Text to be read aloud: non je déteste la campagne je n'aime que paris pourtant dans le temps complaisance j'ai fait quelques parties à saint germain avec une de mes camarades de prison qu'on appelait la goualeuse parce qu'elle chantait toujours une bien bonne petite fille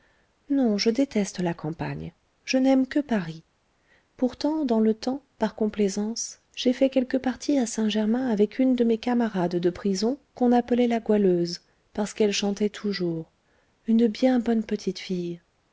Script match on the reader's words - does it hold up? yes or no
no